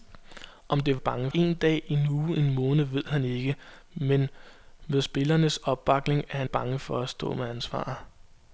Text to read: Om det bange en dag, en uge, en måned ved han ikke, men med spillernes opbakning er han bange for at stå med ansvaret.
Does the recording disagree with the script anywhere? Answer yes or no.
no